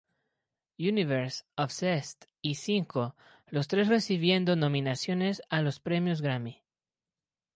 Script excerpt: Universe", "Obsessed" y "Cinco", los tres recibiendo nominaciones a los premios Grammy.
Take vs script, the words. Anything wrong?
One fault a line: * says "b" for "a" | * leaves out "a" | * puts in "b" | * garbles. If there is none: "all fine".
all fine